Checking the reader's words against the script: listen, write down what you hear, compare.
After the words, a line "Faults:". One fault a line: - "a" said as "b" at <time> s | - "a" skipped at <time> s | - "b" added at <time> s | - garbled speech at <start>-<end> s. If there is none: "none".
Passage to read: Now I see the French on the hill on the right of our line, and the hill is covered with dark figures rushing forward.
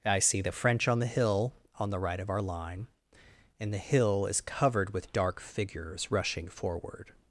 I see the French on the hill on the right of our line, and the hill is covered with dark figures rushing forward.
Faults:
- "Now" skipped at 0.1 s